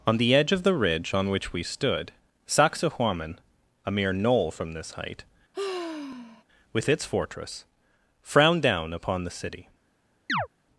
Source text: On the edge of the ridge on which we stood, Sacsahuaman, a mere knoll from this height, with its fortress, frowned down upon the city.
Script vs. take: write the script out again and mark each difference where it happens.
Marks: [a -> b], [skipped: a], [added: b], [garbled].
On the edge of the ridge on which we stood, Sacsahuaman, a mere knoll from this height, with its fortress, frowned down upon the city.